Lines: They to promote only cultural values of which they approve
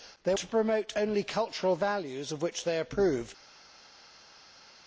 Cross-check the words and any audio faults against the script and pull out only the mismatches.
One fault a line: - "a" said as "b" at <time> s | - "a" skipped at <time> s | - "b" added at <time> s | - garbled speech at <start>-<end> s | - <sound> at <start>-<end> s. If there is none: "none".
none